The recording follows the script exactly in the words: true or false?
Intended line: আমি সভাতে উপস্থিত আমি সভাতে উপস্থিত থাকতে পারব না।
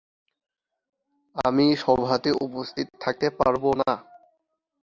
false